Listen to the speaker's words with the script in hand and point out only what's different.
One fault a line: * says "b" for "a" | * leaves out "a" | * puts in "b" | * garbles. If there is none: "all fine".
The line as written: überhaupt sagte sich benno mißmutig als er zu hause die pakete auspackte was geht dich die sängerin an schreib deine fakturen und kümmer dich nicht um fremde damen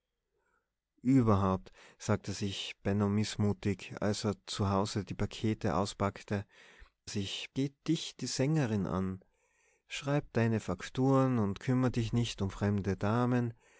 * says "sich" for "was"